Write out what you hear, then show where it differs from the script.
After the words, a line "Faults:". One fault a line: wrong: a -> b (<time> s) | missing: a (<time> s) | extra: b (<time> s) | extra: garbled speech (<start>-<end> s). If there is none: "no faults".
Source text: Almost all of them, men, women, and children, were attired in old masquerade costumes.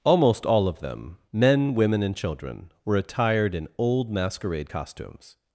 Almost all of them, men, women, and children, were attired in old masquerade costumes.
Faults:
no faults